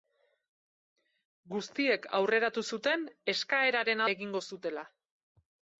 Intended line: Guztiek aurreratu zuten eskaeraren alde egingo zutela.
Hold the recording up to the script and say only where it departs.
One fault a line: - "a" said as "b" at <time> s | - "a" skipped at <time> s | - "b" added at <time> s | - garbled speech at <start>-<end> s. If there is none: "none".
- "alde" skipped at 4.0 s